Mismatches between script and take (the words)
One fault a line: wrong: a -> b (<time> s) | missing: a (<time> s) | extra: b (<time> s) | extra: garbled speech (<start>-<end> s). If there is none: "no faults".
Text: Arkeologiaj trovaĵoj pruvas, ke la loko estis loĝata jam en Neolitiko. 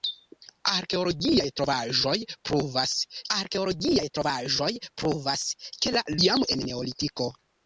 wrong: ke la loko estis loĝata -> arkeologiaj trovaĵoj pruvas ke la (3.4 s)